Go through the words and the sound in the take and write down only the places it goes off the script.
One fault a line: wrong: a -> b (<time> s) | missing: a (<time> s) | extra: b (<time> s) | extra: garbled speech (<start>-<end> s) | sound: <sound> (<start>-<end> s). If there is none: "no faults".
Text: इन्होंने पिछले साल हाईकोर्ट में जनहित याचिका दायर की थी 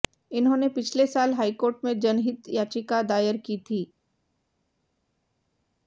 no faults